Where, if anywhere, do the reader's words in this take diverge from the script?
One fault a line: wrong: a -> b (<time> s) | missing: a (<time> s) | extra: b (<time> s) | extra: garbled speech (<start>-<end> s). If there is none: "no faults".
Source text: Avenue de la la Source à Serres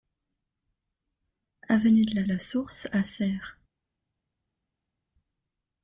no faults